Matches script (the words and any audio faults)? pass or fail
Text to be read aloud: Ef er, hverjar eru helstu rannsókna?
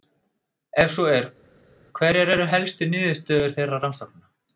fail